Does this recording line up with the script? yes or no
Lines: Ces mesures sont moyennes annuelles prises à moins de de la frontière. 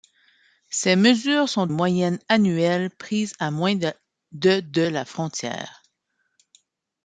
yes